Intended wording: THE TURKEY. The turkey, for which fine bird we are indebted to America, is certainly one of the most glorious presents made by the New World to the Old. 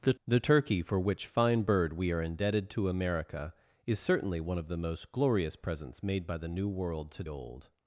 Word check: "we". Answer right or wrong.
right